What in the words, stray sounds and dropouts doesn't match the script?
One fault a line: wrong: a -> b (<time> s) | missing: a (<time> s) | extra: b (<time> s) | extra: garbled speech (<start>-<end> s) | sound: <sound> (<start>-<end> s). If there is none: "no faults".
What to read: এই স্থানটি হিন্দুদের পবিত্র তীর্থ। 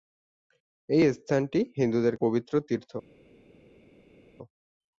no faults